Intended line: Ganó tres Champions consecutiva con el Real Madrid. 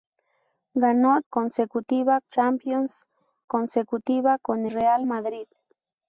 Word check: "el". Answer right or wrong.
wrong